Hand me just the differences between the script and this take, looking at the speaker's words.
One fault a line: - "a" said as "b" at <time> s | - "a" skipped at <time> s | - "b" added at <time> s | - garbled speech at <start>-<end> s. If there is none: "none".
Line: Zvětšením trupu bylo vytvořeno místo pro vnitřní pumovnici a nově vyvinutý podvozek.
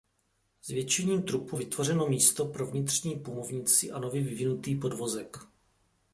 - "bylo" skipped at 1.6 s